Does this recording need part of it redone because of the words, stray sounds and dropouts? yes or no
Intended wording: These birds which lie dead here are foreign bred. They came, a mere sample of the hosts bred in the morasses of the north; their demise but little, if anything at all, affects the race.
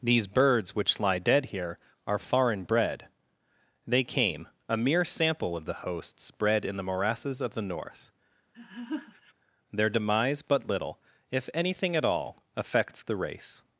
yes